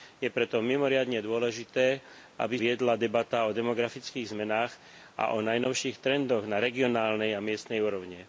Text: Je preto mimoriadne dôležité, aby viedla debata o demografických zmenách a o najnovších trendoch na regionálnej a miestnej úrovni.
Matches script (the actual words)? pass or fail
pass